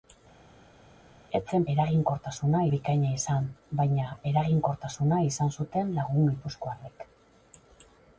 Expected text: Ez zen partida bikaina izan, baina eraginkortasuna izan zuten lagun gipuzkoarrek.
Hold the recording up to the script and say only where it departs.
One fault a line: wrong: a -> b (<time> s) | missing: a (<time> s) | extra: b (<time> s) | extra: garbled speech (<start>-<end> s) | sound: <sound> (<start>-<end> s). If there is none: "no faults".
wrong: partida -> eraginkortasuna (1.8 s)